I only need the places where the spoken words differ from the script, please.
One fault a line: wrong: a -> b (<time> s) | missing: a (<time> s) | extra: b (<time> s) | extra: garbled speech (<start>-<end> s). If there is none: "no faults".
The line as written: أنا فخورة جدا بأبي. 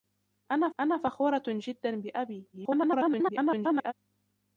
extra: أنا (0.8 s)
extra: garbled speech (2.5-3.9 s)